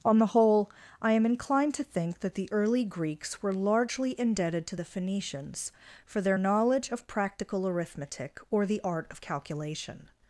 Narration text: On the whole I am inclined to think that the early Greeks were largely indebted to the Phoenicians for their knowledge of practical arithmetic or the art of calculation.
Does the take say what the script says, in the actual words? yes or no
yes